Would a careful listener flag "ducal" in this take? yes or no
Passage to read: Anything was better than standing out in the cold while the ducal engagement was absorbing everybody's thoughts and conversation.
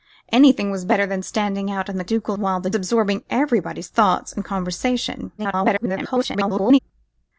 yes